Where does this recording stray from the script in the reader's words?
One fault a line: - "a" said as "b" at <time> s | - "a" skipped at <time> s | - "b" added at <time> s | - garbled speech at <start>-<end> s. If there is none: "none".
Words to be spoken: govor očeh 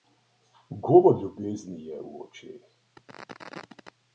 - "ljubezni je v" added at 1.2 s